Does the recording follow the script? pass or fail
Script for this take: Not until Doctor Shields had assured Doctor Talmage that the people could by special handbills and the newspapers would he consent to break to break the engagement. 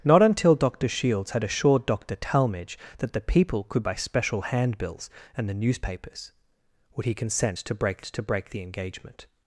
pass